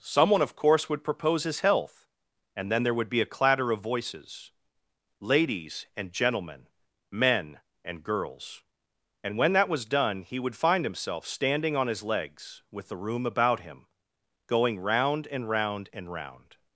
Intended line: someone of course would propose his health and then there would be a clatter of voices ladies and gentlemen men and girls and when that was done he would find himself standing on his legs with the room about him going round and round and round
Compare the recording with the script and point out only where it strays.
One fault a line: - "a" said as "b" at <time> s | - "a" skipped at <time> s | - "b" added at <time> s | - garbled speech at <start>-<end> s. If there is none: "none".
none